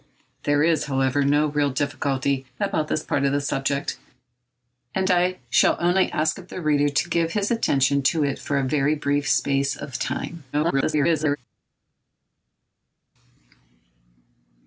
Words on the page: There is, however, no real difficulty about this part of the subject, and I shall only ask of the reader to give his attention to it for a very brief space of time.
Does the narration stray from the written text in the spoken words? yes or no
yes